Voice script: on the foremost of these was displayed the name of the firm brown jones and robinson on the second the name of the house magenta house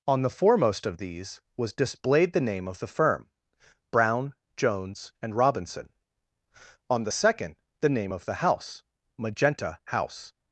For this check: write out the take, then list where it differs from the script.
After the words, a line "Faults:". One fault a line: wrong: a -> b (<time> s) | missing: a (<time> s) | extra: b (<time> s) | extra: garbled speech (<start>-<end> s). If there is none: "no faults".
on the foremost of these was displayed the name of the firm brown jones and robinson on the second the name of the house magenta house
Faults:
no faults